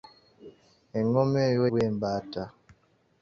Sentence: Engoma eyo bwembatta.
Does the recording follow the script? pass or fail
pass